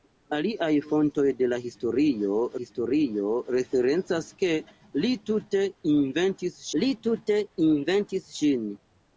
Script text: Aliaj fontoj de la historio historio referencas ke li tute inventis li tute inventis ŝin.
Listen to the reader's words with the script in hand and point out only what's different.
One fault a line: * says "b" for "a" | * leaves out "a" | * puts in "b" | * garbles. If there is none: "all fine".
all fine